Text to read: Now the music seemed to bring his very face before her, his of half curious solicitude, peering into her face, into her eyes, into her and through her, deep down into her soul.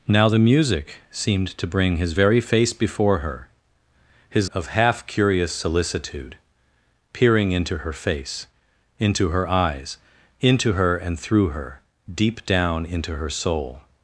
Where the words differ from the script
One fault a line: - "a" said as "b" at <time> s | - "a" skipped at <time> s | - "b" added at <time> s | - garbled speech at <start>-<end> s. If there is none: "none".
none